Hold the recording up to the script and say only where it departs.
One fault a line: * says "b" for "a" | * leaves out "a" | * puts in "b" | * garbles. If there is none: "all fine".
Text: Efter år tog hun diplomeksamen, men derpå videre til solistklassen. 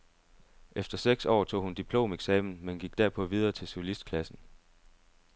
* puts in "seks"
* puts in "gik"